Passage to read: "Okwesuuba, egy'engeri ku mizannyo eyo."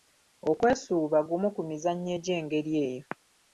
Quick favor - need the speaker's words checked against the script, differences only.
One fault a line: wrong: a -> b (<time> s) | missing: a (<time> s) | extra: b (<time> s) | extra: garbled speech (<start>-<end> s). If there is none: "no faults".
wrong: egy'engeri -> gumu (1.3 s)
extra: egy'engeri (2.2 s)